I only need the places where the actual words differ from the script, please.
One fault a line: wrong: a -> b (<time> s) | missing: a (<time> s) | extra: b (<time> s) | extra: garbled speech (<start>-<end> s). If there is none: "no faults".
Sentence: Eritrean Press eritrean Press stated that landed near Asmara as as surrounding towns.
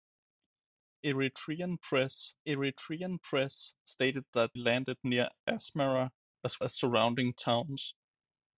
no faults